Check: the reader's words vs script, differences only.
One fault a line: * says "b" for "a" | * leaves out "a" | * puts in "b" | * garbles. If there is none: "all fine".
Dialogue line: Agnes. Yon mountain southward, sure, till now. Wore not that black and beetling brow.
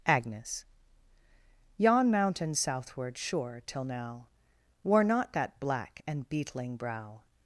all fine